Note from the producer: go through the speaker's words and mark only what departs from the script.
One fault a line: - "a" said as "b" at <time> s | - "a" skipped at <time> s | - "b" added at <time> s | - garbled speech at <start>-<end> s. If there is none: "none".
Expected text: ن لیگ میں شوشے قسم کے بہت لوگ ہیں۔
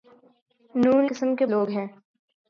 - "لیگ میں شوشے" skipped at 0.8 s
- "بہت" skipped at 1.5 s